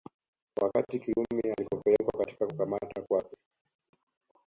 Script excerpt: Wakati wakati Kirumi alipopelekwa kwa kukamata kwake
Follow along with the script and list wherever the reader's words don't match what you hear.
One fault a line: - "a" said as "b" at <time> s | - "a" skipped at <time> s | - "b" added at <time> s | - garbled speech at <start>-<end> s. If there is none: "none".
- "wakati" skipped at 1.0 s
- "kwa" said as "katika" at 2.2 s